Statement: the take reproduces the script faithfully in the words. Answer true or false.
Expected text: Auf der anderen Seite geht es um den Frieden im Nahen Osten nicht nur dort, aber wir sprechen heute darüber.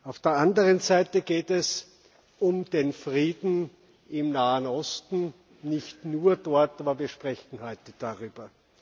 true